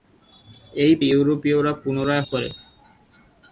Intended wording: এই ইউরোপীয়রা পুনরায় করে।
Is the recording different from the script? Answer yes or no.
no